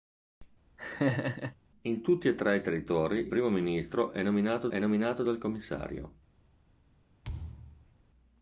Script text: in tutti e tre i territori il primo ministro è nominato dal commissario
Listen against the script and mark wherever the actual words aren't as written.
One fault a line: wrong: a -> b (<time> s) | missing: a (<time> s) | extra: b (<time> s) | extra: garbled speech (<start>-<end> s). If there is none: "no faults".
missing: il (3.3 s)
extra: è nominato (4.7 s)